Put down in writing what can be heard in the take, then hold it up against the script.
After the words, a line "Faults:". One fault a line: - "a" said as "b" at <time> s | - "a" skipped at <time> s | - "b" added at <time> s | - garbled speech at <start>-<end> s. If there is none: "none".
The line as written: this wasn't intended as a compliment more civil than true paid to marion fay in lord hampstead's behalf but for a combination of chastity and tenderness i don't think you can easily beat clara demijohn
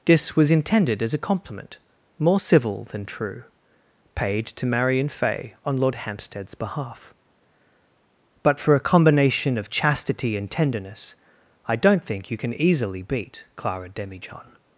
this was intended as a compliment more civil than true paid to marion fay on lord hampstead's behalf but for a combination of chastity and tenderness i don't think you can easily beat clara demijohn
Faults:
- "wasn't" said as "was" at 0.3 s
- "in" said as "on" at 5.6 s